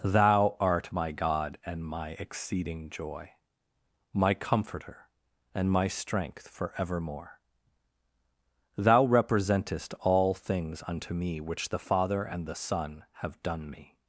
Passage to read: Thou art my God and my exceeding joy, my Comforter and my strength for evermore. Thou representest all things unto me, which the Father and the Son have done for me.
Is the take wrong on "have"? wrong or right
right